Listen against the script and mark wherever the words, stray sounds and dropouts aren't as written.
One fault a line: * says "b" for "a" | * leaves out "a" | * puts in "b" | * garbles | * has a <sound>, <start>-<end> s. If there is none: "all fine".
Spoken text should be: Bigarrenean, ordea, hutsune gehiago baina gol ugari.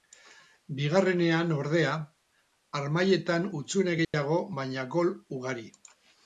* puts in "harmailetan"
* has a dropout, 4.0-4.1 s